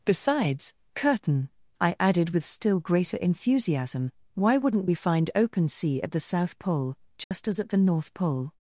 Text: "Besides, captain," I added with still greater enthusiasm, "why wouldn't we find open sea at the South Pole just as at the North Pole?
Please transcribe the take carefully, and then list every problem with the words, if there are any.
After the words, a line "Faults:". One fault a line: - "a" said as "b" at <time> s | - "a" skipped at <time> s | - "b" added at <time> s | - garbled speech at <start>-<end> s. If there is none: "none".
"Besides, curtain," I added with still greater enthusiasm, "why wouldn't we find open sea at the South Pole just as at the North Pole?
Faults:
- "captain" said as "curtain" at 0.9 s